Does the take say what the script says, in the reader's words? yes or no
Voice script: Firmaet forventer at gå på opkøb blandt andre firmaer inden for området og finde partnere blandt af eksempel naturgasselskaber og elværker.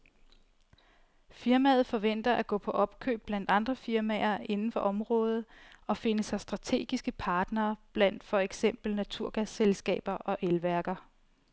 no